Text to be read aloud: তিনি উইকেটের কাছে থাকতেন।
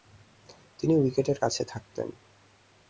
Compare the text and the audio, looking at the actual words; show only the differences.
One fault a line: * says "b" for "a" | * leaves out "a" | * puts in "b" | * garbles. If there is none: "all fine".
all fine